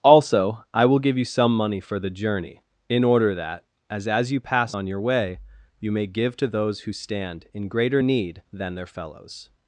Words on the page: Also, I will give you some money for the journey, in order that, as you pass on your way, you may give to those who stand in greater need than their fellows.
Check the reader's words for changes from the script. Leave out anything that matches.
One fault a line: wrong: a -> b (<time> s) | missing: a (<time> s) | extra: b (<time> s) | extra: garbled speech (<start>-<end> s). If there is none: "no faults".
extra: as (4.1 s)